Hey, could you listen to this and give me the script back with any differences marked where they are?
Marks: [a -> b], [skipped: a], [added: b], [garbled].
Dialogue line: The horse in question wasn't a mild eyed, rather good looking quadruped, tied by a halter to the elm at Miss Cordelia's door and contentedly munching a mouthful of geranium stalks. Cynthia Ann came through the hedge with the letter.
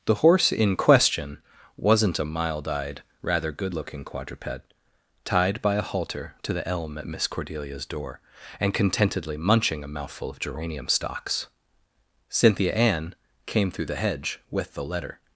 The horse in question wasn't a mild eyed, rather good looking quadruped, tied by a halter to the elm at Miss Cordelia's door and contentedly munching a mouthful of geranium stalks. Cynthia Ann came through the hedge with the letter.